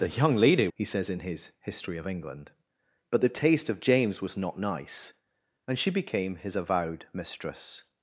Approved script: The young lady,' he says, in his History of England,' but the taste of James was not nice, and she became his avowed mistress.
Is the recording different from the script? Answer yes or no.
no